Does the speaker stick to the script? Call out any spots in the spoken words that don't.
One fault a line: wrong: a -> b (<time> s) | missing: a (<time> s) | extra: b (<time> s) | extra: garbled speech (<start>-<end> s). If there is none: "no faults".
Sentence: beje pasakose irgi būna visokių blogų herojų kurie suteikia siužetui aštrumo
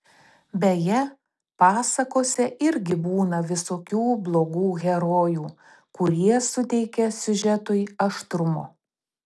no faults